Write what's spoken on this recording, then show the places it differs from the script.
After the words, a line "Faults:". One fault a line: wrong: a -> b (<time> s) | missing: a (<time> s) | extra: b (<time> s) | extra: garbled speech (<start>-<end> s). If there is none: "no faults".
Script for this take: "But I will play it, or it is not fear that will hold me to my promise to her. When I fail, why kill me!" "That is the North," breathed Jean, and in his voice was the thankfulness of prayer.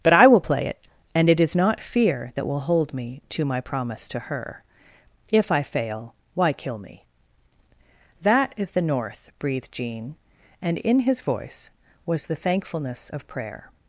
"But I will play it, and it is not fear that will hold me to my promise to her. If I fail, why kill me!" "That is the North," breathed Jean, and in his voice was the thankfulness of prayer.
Faults:
wrong: or -> and (1.1 s)
wrong: When -> If (5.3 s)